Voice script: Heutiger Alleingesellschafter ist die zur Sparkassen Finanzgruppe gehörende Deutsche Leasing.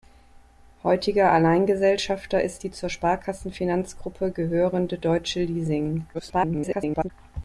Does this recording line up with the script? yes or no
no